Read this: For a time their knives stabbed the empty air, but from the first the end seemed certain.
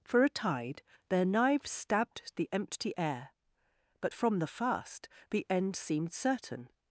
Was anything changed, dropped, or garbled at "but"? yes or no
no